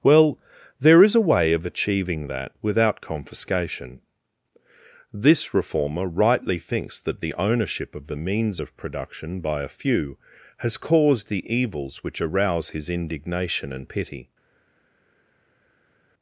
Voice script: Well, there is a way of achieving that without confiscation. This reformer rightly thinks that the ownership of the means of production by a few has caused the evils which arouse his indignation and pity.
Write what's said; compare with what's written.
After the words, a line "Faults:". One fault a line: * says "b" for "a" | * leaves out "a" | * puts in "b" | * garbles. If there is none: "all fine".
Well, there is a way of achieving that without confiscation. This reformer rightly thinks that the ownership of the means of production by a few has caused the evils which arouse his indignation and pity.
Faults:
all fine